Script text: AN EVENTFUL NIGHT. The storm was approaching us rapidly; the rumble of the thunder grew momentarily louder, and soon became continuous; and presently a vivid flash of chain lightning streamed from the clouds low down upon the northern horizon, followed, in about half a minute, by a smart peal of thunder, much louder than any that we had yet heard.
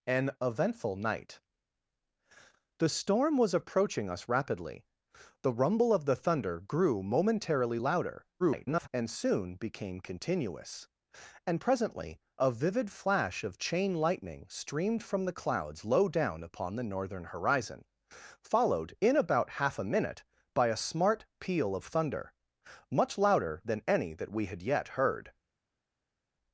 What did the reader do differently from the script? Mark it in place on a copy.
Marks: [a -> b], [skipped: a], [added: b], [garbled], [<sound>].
AN EVENTFUL NIGHT. The storm was approaching us rapidly; the rumble of the thunder grew momentarily louder, [garbled] and soon became continuous; and presently a vivid flash of chain lightning streamed from the clouds low down upon the northern horizon, followed, in about half a minute, by a smart peal of thunder, much louder than any that we had yet heard.